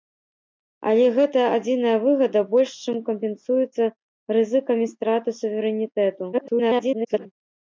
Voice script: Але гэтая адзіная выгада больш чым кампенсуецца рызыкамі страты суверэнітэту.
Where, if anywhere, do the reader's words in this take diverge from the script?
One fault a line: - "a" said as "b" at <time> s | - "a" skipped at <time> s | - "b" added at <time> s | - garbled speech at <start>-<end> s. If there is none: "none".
- garbled speech at 6.3-7.3 s